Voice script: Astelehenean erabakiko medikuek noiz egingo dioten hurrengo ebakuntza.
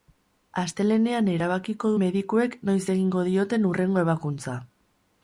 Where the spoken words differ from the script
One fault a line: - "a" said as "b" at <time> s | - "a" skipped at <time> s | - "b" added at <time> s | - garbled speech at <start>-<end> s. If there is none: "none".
none